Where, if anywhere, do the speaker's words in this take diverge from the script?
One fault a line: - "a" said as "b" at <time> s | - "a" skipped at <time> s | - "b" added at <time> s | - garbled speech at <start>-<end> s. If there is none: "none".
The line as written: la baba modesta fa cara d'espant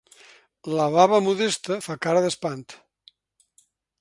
none